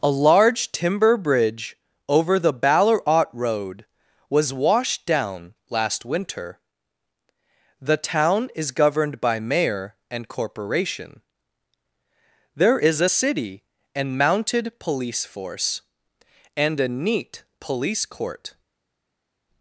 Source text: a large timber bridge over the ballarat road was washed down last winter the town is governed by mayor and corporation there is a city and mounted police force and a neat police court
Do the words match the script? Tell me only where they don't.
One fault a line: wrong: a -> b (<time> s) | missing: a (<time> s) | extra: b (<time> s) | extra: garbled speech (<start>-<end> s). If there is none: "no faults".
no faults